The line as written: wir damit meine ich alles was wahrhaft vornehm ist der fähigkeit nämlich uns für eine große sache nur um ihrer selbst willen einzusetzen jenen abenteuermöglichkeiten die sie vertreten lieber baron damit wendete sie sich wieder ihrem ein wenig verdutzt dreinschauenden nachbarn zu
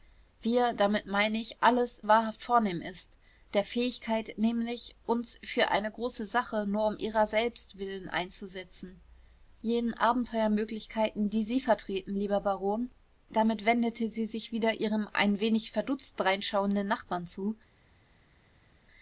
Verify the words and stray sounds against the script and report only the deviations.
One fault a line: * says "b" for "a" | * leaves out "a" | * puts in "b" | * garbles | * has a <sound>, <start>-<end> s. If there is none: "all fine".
* leaves out "was"